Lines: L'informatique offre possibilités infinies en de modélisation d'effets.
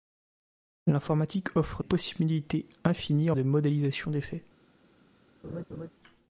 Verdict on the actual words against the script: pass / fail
pass